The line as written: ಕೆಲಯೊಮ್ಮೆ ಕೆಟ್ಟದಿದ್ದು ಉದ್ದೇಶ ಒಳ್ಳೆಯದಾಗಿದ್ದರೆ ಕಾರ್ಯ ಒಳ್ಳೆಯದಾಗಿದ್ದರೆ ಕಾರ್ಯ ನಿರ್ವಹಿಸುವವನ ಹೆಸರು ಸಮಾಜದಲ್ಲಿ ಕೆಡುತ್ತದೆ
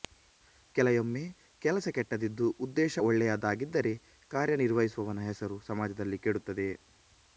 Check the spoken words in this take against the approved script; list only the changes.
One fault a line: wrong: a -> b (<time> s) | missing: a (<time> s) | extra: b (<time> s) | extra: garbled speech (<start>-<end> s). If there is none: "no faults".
extra: ಕೆಲಸ (1.6 s)
missing: ಒಳ್ಳೆಯದಾಗಿದ್ದರೆ ಕಾರ್ಯ (4.6 s)